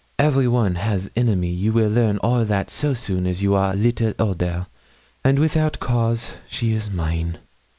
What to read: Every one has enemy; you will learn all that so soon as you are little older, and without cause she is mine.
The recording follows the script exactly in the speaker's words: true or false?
true